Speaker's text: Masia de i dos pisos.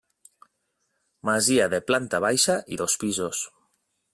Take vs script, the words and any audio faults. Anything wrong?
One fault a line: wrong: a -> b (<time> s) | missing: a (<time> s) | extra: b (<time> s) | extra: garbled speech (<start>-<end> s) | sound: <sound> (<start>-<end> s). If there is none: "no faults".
extra: planta baixa (1.9 s)